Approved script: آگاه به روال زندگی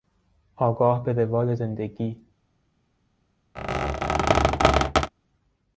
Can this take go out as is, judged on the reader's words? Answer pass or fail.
pass